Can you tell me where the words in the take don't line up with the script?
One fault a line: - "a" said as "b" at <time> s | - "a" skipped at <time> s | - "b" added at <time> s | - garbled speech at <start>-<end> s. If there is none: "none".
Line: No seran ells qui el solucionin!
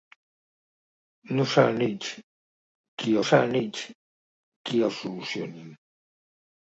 - "seran ells qui" added at 3.3 s